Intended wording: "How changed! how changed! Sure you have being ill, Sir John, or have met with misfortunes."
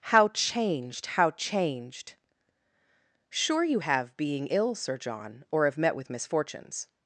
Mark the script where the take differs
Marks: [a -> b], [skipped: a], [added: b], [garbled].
"How changed! how changed! Sure you have being ill, Sir John, or have met with misfortunes."